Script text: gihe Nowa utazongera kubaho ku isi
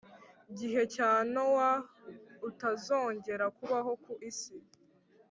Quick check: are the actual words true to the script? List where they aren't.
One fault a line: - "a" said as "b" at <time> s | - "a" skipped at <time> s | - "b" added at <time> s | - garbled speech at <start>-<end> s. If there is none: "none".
- "cya" added at 0.9 s